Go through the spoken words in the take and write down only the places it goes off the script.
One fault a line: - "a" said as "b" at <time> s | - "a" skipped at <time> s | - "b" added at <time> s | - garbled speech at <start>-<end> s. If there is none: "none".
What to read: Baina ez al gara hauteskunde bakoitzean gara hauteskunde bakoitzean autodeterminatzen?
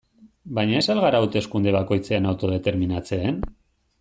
- "gara hauteskunde bakoitzean" skipped at 2.3 s